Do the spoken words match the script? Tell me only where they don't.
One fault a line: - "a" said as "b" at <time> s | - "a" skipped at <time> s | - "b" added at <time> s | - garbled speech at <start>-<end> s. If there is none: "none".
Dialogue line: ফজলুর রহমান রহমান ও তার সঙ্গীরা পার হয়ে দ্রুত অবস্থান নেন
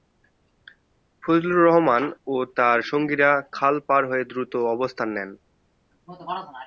- "রহমান" skipped at 2.0 s
- "খাল" added at 3.5 s